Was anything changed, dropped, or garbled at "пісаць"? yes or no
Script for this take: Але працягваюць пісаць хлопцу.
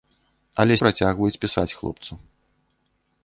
no